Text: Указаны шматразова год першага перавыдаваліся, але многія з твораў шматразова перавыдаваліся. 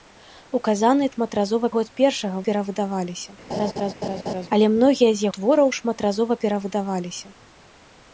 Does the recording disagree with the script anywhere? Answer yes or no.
no